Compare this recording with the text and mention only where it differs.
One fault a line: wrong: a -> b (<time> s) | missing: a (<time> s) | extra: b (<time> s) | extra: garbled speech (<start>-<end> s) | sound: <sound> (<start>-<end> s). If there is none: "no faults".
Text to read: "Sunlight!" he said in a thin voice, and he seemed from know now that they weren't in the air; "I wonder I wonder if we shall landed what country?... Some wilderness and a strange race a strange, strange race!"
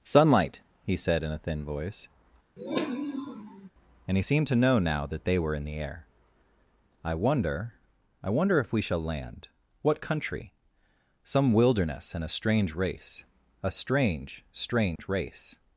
sound: sniff (2.6-3.7 s)
wrong: from -> to (4.4 s)
wrong: weren't -> were (5.4 s)
wrong: landed -> land (9.0 s)
sound: dropout (15.0-15.0 s)